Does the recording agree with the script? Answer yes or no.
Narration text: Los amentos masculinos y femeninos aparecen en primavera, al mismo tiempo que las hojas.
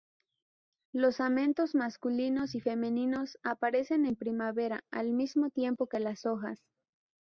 yes